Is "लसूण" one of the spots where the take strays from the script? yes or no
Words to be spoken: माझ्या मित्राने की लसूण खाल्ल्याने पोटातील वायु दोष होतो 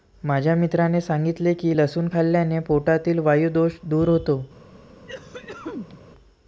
no